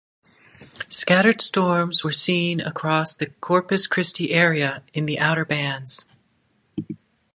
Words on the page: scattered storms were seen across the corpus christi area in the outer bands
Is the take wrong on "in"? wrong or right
right